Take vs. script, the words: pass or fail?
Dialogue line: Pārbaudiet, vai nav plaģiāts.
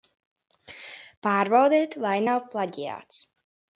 pass